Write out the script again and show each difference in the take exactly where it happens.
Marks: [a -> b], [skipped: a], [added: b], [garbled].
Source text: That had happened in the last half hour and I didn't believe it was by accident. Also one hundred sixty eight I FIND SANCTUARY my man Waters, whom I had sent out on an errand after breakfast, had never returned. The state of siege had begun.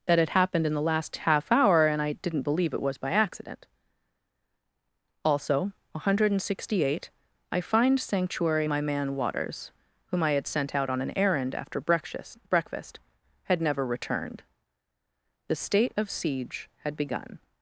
That had happened in the last half hour and I didn't believe it was by accident. Also one hundred sixty eight I FIND SANCTUARY my man Waters, whom I had sent out on an errand after breakfast, [added: breakfast] had never returned. The state of siege had begun.